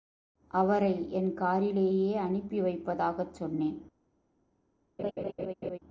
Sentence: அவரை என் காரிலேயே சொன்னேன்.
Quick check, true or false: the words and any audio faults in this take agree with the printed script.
false